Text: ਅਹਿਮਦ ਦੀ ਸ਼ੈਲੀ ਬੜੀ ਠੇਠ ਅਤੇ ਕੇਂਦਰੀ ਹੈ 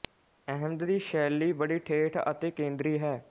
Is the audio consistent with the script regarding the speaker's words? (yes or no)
yes